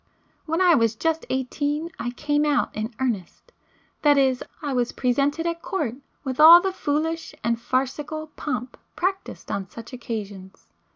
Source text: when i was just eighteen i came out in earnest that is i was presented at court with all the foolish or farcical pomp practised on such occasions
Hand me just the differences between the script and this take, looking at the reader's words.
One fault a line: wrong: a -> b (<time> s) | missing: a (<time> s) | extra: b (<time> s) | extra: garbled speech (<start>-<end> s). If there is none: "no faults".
wrong: or -> and (7.4 s)